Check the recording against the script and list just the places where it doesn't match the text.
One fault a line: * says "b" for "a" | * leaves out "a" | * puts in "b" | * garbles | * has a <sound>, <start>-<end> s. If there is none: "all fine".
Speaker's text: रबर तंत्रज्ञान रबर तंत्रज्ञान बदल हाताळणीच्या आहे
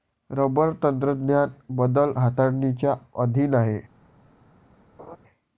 * leaves out "रबर तंत्रज्ञान"
* puts in "अधीन"
* has a laugh, 5.0-5.2 s